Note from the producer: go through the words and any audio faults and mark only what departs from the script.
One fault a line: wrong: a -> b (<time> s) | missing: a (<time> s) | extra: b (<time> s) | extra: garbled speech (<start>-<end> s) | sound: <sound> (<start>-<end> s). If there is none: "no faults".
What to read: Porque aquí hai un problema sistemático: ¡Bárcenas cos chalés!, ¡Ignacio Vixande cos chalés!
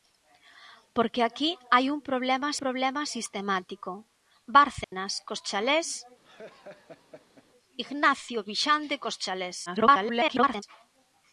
extra: problema (2.6 s)
sound: dropout (4.8-4.9 s)
sound: laugh (6.2-7.5 s)
extra: garbled speech (9.7-10.6 s)